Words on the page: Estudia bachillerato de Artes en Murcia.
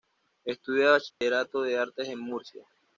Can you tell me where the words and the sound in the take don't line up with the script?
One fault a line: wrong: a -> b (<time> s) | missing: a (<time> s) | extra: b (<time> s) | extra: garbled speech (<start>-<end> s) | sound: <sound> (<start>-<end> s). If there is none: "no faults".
sound: dropout (1.1-1.2 s)